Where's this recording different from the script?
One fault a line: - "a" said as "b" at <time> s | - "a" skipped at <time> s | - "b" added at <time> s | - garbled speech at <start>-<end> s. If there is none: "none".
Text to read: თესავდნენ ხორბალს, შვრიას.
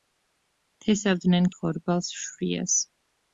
none